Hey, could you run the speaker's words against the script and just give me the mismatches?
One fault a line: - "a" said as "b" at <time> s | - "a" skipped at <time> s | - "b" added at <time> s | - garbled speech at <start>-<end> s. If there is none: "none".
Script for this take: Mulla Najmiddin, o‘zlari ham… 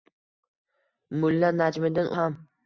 - "o‘zlari" skipped at 2.1 s